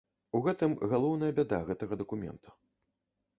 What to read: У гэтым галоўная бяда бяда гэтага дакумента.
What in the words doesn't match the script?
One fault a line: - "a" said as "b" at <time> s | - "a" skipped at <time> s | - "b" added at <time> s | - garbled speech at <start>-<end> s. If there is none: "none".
- "бяда" skipped at 1.6 s